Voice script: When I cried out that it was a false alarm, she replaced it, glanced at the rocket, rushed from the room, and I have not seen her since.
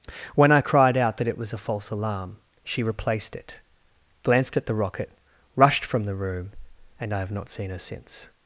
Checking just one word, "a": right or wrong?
right